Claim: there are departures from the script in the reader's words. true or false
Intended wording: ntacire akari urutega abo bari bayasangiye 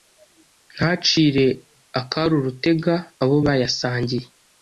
true